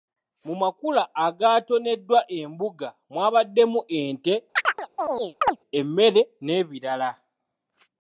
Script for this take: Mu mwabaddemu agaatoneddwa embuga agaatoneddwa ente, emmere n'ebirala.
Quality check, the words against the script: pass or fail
fail